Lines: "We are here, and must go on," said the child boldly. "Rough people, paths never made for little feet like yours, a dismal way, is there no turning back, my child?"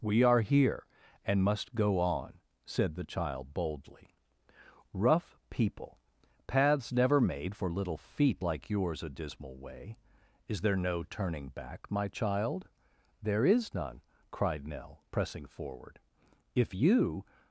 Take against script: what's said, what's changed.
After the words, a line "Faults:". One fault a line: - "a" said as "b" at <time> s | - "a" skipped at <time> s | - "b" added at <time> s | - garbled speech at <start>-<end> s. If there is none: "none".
"We are here, and must go on," said the child boldly. "Rough people, paths never made for little feet like yours, a dismal way, is there no turning back, my child?" "There is none," cried Nell, pressing forward. "If you
Faults:
- "There is none cried Nell pressing forward If you" added at 13.2 s